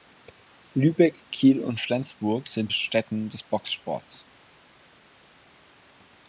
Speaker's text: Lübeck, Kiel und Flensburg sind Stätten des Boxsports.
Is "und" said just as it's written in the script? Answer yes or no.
yes